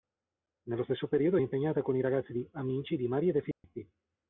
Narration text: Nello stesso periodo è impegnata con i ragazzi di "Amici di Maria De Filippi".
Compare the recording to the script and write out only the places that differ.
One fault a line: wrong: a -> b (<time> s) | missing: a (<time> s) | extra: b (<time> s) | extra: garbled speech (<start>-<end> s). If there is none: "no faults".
no faults